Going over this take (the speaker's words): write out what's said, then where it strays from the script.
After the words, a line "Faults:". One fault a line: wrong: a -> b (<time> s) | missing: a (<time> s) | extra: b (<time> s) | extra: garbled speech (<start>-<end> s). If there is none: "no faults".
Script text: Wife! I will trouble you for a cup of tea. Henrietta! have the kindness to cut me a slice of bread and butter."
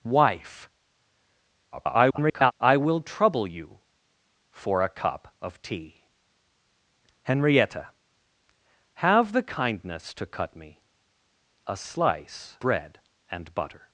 Wife! [garbled] I will trouble you for a cup of tea. Henrietta! have the kindness to cut me a slice bread and butter."
Faults:
extra: garbled speech (1.7-2.5 s)
missing: of (12.6 s)